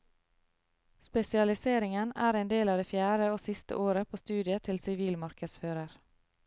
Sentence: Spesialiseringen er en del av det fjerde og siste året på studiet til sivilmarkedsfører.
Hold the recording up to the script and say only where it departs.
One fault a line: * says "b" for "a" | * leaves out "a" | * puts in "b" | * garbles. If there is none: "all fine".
all fine